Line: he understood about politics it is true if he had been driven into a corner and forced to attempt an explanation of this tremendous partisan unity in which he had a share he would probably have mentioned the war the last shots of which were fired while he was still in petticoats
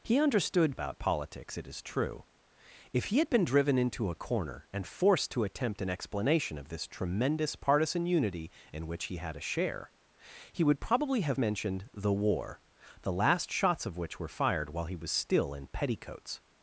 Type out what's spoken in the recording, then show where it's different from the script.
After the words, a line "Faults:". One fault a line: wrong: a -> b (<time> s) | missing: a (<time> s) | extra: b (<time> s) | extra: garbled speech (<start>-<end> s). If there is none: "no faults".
he understood about politics it is true if he had been driven into a corner and forced to attempt an explanation of this tremendous partisan unity in which he had a share he would probably have mentioned the war the last shots of which were fired while he was still in petticoats
Faults:
no faults